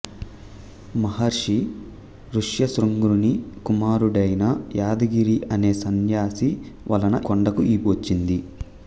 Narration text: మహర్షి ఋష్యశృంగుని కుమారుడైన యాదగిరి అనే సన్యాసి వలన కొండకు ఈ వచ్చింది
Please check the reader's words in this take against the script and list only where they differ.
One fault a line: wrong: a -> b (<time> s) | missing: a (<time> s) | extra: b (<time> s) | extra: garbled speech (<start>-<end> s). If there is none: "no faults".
no faults